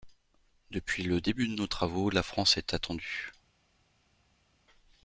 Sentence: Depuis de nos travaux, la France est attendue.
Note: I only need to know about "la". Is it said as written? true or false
true